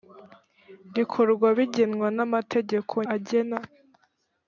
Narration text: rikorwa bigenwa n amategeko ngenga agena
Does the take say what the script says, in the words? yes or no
no